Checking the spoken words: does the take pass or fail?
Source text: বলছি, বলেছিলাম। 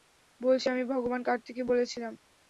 fail